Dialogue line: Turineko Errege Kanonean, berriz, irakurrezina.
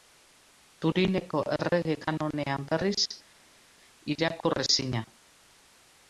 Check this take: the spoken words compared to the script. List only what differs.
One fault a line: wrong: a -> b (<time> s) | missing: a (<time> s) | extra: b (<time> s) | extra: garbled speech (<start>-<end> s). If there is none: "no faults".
no faults